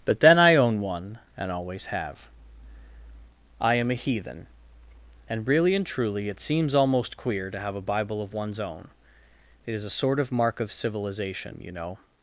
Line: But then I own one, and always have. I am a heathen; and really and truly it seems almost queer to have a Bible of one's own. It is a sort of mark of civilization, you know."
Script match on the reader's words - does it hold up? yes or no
yes